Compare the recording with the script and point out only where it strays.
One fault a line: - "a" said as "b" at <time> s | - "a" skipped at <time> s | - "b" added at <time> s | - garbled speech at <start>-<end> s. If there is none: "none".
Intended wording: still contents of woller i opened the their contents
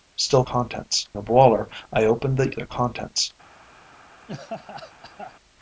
none